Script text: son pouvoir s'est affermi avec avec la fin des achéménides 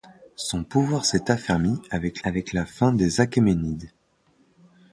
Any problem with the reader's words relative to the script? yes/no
no